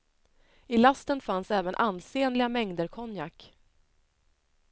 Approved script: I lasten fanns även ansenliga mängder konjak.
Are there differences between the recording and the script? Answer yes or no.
no